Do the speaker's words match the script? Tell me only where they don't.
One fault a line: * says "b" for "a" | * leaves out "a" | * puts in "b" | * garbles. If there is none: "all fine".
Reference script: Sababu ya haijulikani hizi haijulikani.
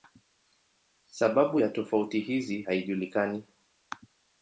* says "tofauti" for "haijulikani"